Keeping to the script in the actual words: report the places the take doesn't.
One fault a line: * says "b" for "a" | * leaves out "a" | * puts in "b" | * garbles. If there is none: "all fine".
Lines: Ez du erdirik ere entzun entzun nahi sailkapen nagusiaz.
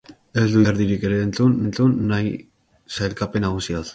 all fine